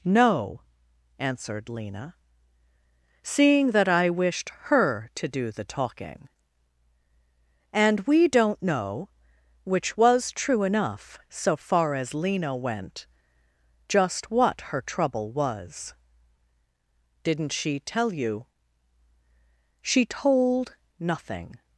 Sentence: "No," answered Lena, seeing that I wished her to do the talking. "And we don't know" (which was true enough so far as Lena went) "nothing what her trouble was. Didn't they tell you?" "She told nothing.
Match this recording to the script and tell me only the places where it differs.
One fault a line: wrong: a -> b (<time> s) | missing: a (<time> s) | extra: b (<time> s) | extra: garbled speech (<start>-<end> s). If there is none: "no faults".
wrong: nothing -> just (13.9 s)
wrong: they -> she (17.5 s)